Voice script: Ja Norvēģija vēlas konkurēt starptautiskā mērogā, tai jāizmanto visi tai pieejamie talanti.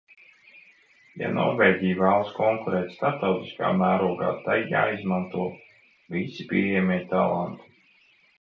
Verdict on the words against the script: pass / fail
fail